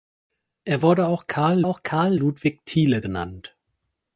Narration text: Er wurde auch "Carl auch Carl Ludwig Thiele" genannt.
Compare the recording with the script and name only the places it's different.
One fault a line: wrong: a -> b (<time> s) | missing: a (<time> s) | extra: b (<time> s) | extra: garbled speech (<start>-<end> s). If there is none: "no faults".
no faults